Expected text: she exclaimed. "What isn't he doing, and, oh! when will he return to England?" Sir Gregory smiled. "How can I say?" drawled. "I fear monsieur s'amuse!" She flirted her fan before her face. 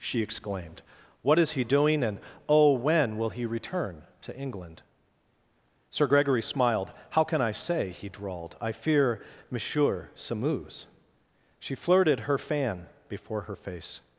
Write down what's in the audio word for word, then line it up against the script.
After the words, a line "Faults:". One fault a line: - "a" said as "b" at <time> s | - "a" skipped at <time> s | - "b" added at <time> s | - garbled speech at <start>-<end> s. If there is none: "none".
she exclaimed. "What is he doing, and, oh! when will he return to England?" Sir Gregory smiled. "How can I say?" he drawled. "I fear monsieur s'amuse!" She flirted her fan before her face.
Faults:
- "isn't" said as "is" at 1.4 s
- "he" added at 7.9 s